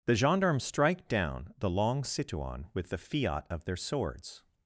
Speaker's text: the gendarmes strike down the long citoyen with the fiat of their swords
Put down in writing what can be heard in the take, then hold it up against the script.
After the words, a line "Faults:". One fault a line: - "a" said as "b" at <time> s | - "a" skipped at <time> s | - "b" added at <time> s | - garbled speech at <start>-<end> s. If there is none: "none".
the gendarmes strike down the long citoyen with the fiat of their swords
Faults:
none